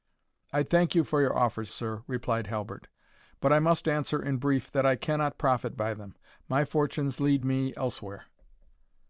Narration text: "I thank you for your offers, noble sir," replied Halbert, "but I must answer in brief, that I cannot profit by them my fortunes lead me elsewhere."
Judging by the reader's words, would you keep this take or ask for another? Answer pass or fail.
fail